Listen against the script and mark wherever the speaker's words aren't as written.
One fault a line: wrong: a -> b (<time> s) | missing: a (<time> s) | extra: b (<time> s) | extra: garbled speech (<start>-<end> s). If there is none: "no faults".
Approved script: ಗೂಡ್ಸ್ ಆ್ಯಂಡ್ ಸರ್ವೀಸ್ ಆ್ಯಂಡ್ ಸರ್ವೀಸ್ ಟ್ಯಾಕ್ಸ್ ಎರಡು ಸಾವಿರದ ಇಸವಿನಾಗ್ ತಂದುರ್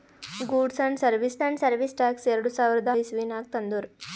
no faults